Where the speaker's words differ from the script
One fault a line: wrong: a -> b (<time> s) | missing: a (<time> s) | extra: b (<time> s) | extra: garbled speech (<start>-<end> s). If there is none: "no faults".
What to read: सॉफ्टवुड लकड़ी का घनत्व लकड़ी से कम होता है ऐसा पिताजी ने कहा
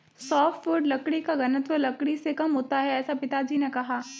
no faults